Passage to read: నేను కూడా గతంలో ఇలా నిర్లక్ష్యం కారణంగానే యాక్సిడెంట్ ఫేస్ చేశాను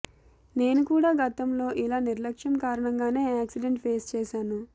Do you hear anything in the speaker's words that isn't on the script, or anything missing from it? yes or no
no